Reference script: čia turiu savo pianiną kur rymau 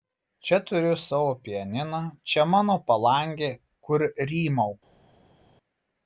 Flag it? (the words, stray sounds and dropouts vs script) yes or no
yes